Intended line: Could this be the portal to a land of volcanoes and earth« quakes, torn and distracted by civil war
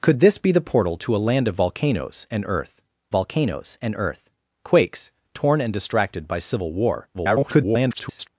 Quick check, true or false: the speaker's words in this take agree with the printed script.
false